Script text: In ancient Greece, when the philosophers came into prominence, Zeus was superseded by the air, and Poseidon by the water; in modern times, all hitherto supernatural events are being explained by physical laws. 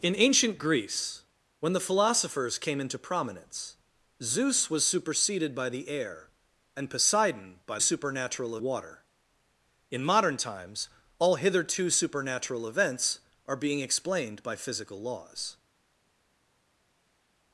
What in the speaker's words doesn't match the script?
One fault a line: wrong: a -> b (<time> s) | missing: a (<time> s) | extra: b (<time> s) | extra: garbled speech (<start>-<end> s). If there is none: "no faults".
wrong: the -> supernatural (7.8 s)